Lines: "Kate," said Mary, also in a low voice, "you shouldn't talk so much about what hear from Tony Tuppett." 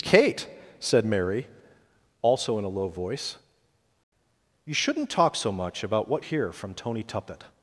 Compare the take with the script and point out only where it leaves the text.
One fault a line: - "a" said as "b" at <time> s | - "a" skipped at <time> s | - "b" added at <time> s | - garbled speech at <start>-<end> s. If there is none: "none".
none